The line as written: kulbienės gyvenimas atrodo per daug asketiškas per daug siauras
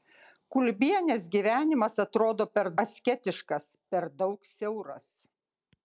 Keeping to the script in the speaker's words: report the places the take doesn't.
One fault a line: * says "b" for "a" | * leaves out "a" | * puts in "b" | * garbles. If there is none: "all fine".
* leaves out "daug"